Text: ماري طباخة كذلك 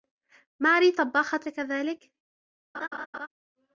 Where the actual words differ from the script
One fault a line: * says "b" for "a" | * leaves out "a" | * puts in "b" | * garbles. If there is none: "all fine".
all fine